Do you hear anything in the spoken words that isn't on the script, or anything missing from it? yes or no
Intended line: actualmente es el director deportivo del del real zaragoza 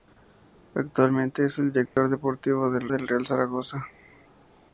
no